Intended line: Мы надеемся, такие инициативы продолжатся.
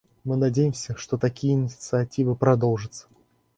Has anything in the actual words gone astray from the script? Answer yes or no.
yes